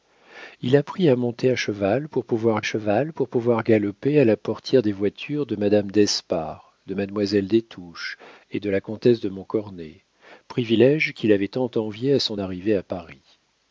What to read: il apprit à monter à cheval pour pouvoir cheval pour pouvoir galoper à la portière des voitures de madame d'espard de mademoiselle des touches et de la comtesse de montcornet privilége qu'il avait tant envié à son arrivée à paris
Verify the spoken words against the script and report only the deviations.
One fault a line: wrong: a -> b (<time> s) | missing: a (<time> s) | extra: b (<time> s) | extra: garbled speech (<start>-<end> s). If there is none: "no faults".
no faults